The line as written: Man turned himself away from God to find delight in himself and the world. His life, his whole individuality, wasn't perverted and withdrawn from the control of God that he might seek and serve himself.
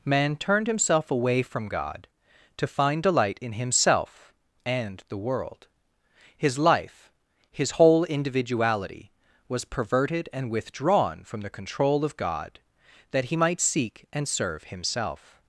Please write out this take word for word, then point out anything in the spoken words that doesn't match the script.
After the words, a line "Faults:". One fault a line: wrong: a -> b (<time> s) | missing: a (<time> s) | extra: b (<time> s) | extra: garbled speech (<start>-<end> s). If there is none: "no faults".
Man turned himself away from God to find delight in himself and the world. His life, his whole individuality, was perverted and withdrawn from the control of God that he might seek and serve himself.
Faults:
wrong: wasn't -> was (9.5 s)